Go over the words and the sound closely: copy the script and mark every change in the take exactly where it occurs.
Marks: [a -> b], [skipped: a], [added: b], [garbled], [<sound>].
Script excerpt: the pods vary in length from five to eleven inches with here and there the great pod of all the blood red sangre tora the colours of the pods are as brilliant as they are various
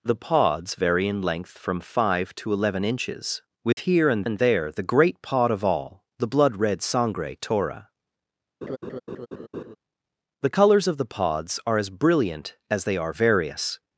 the pods vary in length from five to eleven inches with [dropout] here and [added: and] there the great pod of all the blood red sangre tora [laugh] the colours of the pods are as brilliant as they are various